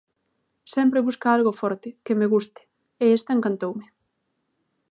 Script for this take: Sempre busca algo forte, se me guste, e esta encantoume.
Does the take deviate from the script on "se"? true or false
true